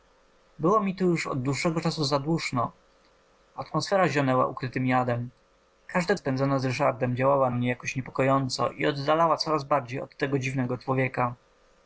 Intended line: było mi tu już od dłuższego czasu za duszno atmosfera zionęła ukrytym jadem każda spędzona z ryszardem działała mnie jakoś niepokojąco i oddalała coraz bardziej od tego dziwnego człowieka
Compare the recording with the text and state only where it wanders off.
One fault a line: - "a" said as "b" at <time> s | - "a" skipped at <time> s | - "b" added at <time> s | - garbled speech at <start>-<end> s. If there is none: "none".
none